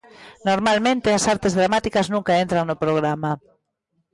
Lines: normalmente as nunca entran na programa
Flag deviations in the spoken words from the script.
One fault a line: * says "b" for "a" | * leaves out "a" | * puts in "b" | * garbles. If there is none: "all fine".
* puts in "artes dramáticas"
* says "no" for "na"